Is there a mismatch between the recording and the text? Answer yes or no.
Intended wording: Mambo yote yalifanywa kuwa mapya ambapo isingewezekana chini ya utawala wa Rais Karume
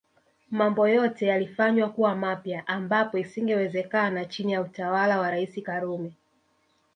no